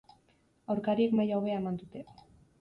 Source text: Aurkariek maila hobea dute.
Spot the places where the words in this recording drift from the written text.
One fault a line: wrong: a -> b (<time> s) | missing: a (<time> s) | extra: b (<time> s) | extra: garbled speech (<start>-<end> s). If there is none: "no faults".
extra: eman (1.6 s)